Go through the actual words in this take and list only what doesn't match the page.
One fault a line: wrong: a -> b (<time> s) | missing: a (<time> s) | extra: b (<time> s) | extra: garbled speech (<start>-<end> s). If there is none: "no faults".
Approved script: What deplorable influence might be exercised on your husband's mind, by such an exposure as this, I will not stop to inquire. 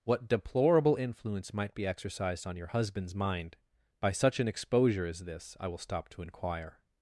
missing: not (5.8 s)